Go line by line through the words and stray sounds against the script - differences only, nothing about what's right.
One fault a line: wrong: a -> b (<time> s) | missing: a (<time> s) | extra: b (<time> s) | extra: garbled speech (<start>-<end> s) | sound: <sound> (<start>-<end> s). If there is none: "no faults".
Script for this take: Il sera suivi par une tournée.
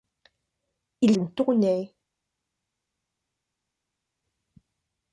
missing: sera suivi par (1.1 s)